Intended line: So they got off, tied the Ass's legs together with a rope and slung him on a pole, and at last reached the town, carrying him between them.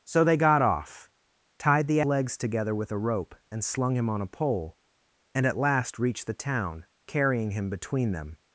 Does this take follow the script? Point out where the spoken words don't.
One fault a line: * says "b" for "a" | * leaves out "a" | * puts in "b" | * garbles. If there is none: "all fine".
* leaves out "Ass's"